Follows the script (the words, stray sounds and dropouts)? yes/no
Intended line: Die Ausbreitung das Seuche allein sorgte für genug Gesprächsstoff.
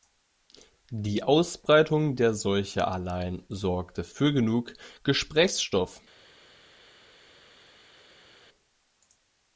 no